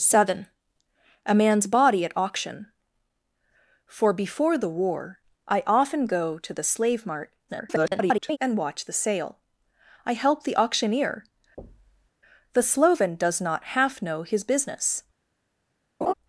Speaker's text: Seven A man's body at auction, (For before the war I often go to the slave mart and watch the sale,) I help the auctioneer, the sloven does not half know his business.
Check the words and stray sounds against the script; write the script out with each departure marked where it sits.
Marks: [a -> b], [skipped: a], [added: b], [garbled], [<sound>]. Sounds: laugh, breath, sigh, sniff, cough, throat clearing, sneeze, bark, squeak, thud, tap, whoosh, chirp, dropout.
Seven A man's body at auction, (For before the war I often go to the slave mart [garbled] and watch the sale,) I help the auctioneer, [thud] the sloven does not half know his business. [laugh]